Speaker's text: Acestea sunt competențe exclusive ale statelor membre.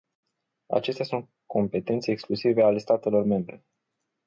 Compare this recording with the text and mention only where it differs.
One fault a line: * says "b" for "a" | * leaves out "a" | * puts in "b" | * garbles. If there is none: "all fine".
all fine